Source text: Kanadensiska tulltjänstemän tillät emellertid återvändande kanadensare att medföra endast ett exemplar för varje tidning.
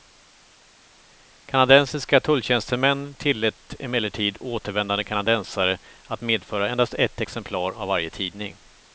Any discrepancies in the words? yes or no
yes